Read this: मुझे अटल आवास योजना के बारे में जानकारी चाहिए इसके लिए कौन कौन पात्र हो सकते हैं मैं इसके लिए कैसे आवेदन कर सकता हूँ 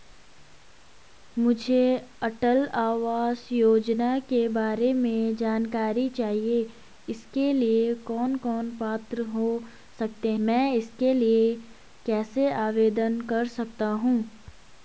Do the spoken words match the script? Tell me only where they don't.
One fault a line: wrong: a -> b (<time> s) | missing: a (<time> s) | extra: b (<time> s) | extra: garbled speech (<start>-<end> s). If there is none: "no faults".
missing: हैं (10.3 s)